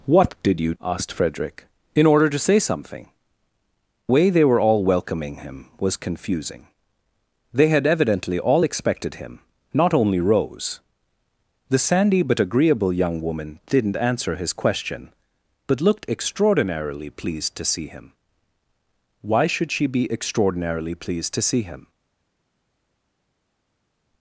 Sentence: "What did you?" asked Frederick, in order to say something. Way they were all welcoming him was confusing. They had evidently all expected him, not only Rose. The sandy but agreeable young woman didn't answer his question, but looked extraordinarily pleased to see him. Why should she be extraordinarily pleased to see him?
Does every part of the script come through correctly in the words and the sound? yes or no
yes